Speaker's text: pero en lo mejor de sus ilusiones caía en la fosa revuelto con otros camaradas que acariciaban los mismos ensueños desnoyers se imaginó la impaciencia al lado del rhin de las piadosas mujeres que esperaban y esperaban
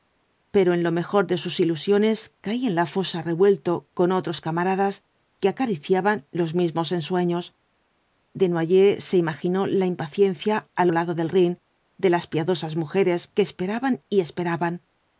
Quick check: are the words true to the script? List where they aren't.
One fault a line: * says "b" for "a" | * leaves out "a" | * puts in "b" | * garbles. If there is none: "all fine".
all fine